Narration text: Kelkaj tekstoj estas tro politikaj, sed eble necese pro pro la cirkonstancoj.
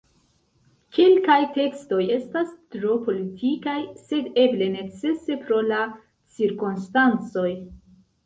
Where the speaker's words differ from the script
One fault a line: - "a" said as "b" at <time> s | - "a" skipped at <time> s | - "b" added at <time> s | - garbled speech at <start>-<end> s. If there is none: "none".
- "pro" skipped at 5.6 s